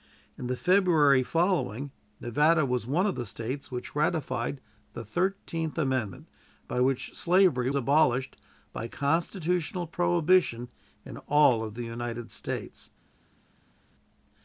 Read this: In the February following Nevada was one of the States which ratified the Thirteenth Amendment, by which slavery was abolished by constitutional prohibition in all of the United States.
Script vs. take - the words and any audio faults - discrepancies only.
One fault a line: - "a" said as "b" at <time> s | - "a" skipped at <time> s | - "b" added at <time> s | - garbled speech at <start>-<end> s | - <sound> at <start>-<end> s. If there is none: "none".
- "was" skipped at 7.7 s